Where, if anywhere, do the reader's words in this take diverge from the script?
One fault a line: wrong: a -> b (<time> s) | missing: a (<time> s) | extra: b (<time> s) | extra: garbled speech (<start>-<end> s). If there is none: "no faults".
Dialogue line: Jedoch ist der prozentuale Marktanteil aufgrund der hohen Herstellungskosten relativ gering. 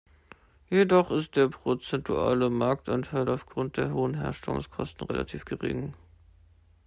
no faults